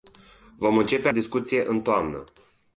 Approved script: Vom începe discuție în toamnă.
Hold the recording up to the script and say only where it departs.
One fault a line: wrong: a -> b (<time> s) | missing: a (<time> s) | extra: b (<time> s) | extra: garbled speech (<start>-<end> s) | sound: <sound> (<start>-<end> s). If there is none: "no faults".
no faults